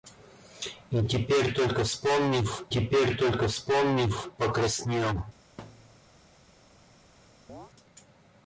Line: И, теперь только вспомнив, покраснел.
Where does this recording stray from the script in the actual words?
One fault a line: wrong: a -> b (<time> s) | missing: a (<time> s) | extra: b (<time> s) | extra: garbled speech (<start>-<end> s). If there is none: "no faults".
extra: теперь только вспомнив (2.7 s)